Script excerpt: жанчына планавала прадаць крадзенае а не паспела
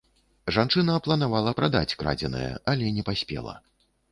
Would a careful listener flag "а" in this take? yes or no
yes